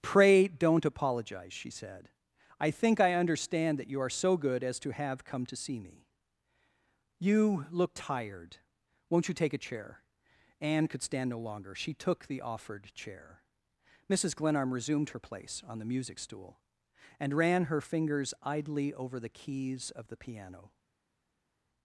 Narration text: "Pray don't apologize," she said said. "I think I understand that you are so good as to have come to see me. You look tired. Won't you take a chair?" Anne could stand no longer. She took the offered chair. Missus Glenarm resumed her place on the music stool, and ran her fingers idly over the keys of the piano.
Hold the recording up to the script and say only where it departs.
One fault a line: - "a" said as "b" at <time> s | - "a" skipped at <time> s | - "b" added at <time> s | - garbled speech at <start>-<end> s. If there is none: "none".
- "said" skipped at 2.1 s